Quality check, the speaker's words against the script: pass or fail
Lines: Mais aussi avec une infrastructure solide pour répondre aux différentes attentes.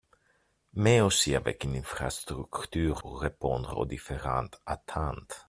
fail